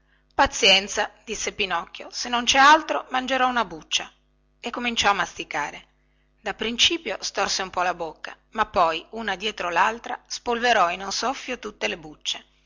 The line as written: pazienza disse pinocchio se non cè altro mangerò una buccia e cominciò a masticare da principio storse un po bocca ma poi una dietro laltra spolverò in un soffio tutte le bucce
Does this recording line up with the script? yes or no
no